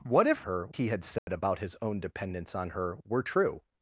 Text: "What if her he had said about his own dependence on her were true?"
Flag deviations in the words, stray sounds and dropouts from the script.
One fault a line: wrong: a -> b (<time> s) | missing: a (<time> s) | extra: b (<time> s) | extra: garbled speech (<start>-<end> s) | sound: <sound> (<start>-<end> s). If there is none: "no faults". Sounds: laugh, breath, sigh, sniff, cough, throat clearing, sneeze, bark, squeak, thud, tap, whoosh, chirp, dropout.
sound: dropout (1.2-1.3 s)